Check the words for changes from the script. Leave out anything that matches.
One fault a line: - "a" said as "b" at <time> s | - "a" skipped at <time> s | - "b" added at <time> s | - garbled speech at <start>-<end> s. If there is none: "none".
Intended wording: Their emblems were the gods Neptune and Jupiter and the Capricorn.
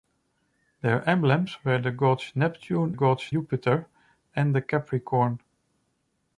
- "and" said as "gods" at 2.9 s